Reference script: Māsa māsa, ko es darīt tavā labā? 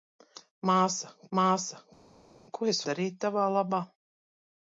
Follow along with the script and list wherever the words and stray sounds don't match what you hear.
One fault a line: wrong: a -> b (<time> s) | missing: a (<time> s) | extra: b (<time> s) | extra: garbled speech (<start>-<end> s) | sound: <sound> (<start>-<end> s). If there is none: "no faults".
no faults